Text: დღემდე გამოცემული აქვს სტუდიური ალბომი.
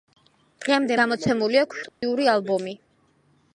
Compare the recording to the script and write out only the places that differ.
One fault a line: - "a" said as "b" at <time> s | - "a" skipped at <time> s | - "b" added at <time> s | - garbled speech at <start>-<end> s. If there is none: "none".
none